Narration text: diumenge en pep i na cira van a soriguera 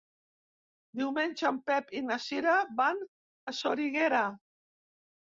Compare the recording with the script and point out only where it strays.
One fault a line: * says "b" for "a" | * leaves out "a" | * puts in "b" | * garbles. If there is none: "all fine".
all fine